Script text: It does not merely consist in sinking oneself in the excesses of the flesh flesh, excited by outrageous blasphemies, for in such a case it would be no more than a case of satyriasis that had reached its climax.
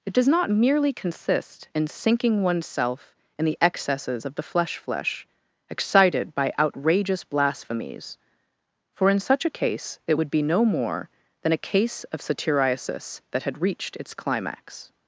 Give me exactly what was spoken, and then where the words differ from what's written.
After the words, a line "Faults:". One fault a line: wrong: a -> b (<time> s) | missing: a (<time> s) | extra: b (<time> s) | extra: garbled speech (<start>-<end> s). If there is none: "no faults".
It does not merely consist in sinking oneself in the excesses of the flesh flesh, excited by outrageous blasphemies, for in such a case it would be no more than a case of satyriasis that had reached its climax.
Faults:
no faults